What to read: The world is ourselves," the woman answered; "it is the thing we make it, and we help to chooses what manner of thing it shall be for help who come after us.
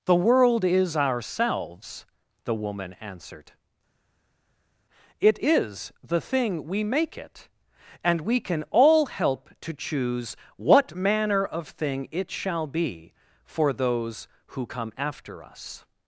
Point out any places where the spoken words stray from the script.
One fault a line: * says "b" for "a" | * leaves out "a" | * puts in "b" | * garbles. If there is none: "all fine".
* puts in "can all"
* says "choose" for "chooses"
* says "those" for "help"